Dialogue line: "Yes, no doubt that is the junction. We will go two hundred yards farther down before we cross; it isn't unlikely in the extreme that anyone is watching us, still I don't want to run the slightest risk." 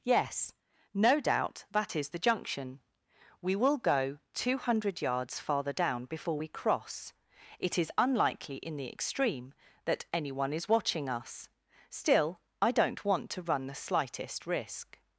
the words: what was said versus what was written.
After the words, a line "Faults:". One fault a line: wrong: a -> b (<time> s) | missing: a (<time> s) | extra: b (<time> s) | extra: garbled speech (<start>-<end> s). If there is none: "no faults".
"Yes, no doubt that is the junction. We will go two hundred yards farther down before we cross; it is unlikely in the extreme that anyone is watching us, still I don't want to run the slightest risk."
Faults:
wrong: isn't -> is (7.8 s)